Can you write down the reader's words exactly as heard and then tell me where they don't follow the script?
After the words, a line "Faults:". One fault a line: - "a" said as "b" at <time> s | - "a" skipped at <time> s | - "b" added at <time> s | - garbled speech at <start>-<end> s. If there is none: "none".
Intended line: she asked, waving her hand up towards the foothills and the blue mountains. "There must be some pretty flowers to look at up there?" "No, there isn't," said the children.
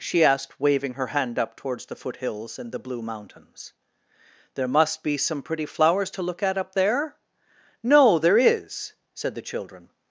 she asked, waving her hand up towards the foothills and the blue mountains. "There must be some pretty flowers to look at up there?" "No, there is," said the children.
Faults:
- "isn't" said as "is" at 8.4 s